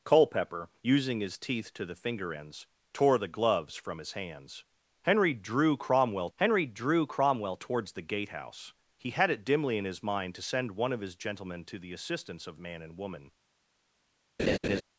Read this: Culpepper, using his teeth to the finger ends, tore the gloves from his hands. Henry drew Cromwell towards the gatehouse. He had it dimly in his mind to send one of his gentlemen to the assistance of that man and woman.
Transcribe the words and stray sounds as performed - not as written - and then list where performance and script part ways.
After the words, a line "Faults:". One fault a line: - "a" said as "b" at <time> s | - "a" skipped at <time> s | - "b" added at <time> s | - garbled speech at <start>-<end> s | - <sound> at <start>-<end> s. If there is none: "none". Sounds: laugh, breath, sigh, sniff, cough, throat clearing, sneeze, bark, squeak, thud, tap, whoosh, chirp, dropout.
Culpepper, using his teeth to the finger ends, tore the gloves from his hands. Henry drew Cromwell henry drew Cromwell towards the gatehouse. He had it dimly in his mind to send one of his gentlemen to the assistance of man and woman.
Faults:
- "henry drew Cromwell" added at 6.4 s
- "that" skipped at 12.6 s
- laugh at 14.4-14.8 s